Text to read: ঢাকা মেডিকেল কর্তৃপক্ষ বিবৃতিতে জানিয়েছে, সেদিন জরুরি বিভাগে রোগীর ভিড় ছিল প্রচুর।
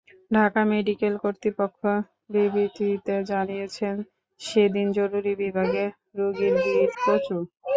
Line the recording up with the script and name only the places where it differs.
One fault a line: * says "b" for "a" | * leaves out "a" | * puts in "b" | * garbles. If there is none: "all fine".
* leaves out "ছিল"